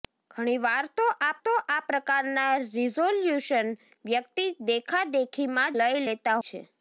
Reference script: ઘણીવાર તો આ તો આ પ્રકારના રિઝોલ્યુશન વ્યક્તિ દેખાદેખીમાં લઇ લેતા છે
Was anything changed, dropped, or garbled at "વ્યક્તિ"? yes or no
no